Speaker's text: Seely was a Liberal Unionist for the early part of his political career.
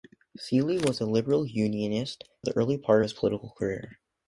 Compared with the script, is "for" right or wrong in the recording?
wrong